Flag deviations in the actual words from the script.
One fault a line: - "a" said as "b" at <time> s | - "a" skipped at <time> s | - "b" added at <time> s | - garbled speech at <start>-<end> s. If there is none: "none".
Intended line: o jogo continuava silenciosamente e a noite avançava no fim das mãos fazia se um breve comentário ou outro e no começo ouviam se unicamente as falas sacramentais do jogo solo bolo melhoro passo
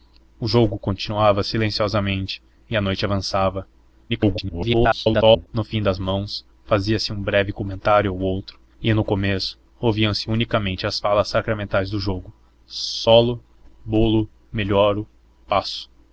- garbled speech at 4.1-5.5 s